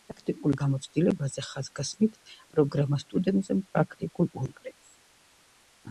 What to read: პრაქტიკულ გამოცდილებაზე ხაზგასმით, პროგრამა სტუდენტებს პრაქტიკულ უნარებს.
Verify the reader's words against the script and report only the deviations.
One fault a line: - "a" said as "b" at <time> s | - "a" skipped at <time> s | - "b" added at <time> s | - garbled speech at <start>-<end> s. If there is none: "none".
none